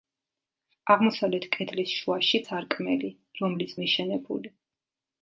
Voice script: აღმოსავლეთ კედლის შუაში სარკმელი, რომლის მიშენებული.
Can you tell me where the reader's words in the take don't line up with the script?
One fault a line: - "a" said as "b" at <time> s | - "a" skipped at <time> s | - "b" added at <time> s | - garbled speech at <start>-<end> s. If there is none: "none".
none